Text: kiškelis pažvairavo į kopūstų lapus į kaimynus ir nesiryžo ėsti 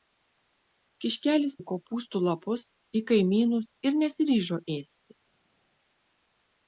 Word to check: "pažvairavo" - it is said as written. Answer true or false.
false